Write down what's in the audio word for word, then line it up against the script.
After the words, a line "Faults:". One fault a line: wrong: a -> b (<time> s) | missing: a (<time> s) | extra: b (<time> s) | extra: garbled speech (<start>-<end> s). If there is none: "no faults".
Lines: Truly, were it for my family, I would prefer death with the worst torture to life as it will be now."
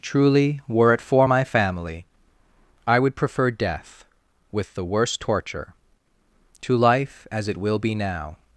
Truly, were it for my family, I would prefer death with the worst torture to life as it will be now."
Faults:
no faults